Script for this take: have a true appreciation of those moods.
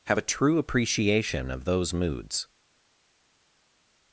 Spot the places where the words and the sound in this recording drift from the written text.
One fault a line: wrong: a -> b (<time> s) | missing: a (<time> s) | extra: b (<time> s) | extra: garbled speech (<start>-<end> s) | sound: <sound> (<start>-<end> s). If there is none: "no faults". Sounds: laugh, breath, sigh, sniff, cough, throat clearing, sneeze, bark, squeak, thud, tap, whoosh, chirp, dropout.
no faults